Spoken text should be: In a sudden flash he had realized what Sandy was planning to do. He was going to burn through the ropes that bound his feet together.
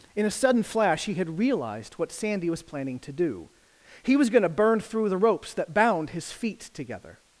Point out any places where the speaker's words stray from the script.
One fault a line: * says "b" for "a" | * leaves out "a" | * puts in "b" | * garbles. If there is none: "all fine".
all fine